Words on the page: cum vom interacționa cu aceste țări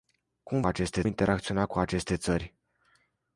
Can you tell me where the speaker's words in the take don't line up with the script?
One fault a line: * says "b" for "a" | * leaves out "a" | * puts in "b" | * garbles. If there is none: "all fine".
* says "aceste" for "vom"